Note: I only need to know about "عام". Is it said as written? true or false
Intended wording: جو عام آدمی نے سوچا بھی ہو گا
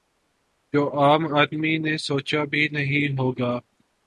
true